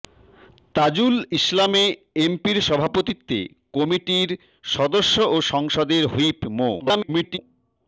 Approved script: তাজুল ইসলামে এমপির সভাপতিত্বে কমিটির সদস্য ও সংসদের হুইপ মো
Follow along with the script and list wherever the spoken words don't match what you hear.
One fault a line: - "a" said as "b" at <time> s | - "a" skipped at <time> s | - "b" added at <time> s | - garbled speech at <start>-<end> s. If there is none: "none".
- garbled speech at 6.8-7.4 s